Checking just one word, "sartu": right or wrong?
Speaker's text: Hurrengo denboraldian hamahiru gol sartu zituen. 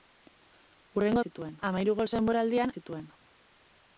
wrong